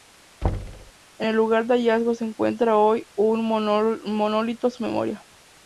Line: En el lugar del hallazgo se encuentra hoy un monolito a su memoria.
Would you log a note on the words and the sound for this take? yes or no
yes